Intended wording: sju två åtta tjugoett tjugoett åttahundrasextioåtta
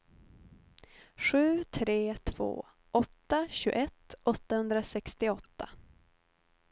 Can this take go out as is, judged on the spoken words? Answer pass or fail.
fail